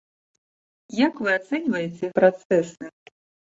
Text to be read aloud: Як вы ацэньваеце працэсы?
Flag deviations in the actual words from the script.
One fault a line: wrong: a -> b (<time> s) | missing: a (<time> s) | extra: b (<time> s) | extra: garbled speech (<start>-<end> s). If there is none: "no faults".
no faults